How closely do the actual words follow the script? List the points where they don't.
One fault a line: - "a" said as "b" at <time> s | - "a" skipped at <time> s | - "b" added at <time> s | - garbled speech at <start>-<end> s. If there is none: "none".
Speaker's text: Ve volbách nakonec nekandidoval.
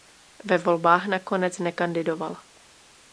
none